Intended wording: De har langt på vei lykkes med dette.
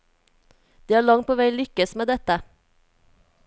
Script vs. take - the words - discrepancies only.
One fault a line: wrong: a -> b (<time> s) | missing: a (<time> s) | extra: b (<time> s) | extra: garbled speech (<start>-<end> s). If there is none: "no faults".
no faults